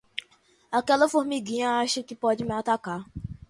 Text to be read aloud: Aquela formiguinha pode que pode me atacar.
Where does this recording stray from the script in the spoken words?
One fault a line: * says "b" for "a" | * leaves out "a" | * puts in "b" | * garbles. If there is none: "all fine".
* says "acha" for "pode"